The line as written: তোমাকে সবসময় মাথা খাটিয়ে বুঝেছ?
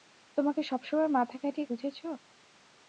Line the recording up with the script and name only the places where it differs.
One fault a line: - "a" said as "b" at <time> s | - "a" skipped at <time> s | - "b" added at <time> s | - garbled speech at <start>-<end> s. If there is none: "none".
none